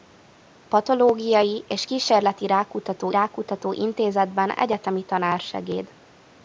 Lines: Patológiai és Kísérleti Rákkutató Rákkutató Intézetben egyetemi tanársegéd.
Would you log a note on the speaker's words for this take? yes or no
no